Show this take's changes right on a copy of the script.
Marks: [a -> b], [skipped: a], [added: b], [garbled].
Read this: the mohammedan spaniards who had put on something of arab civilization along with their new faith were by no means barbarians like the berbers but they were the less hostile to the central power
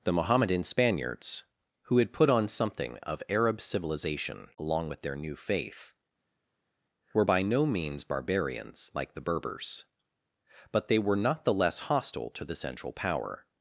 the mohammedan spaniards who had put on something of arab civilization along with their new faith were by no means barbarians like the berbers but they were [added: not] the less hostile to the central power